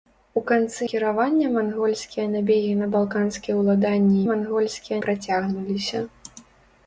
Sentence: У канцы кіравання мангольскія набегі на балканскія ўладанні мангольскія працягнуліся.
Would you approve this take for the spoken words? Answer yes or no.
yes